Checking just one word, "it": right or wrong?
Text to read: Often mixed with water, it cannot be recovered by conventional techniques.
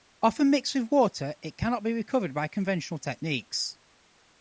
right